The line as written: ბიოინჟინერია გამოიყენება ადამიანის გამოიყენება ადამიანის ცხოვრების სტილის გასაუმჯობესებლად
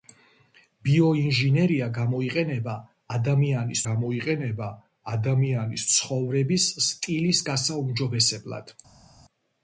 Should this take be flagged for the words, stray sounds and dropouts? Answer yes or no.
no